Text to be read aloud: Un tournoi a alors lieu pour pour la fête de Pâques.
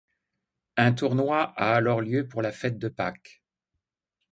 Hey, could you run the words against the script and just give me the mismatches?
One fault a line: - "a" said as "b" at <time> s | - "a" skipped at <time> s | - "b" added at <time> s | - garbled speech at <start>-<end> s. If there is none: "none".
- "pour" skipped at 2.4 s